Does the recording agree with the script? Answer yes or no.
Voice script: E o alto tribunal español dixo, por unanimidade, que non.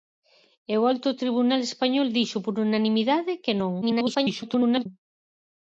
no